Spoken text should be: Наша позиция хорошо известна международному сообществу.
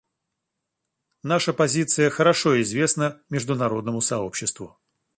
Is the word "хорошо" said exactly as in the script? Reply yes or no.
yes